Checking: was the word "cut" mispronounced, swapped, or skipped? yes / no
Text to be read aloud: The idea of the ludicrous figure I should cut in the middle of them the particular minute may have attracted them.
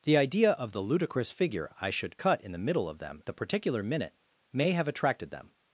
no